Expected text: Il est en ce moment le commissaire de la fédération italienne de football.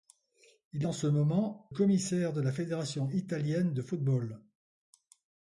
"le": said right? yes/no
no